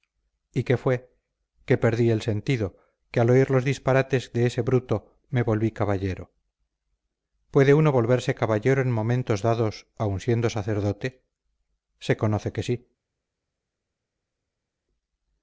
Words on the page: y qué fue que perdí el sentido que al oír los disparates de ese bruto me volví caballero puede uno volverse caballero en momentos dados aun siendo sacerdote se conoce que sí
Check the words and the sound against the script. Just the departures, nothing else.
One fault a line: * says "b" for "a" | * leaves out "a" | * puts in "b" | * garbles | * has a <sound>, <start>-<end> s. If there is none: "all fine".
all fine